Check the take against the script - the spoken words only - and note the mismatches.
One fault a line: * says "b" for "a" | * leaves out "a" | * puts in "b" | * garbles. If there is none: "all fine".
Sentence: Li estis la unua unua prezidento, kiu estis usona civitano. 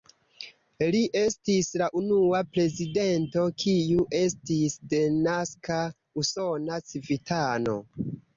* leaves out "unua"
* puts in "denaska"